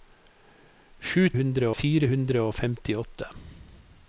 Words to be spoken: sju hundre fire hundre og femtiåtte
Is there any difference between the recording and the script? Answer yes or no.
no